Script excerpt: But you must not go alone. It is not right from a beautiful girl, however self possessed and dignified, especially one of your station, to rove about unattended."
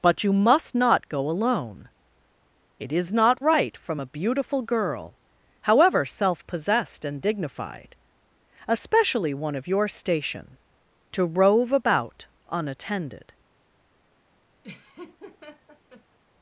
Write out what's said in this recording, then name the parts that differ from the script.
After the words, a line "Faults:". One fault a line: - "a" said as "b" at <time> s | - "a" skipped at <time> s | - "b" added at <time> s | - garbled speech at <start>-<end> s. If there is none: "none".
But you must not go alone. It is not right from a beautiful girl, however self possessed and dignified, especially one of your station, to rove about unattended."
Faults:
none